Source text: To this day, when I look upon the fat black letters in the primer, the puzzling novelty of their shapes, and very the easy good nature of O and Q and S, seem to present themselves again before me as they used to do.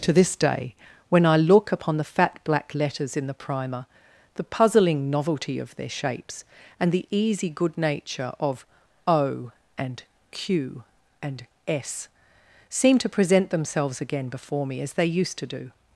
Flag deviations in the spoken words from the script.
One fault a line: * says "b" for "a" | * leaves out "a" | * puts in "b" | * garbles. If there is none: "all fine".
* leaves out "very"